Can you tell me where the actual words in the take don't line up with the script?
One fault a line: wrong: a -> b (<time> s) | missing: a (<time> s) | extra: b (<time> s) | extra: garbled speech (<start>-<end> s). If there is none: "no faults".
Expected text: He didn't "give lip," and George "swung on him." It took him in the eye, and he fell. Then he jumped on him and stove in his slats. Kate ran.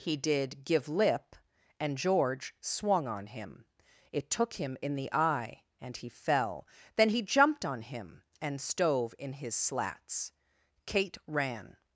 wrong: didn't -> did (0.2 s)